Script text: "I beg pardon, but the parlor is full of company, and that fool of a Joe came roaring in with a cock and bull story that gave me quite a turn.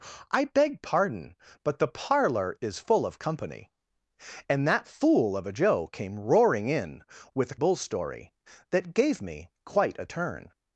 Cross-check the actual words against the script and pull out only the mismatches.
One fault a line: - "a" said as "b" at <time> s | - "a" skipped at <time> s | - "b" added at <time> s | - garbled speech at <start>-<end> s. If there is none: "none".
- "cock and" skipped at 7.6 s